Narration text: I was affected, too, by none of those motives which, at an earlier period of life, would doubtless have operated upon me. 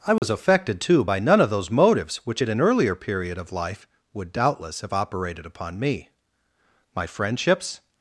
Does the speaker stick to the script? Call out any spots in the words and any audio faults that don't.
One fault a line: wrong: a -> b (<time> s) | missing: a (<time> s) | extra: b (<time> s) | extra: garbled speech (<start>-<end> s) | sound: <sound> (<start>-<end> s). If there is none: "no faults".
sound: dropout (0.2-0.2 s)
extra: My friendships (6.9 s)